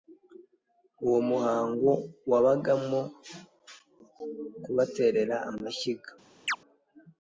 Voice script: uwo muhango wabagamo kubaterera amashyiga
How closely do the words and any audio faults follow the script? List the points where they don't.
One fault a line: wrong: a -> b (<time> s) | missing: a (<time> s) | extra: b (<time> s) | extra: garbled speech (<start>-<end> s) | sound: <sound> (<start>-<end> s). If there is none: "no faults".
sound: chirp (6.5-6.6 s)